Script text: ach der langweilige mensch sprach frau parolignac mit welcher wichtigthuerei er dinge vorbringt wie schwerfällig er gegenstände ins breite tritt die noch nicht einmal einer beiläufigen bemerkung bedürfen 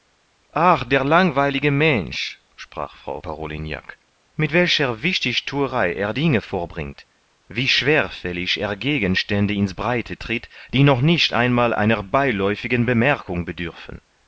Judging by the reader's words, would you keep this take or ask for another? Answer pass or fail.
pass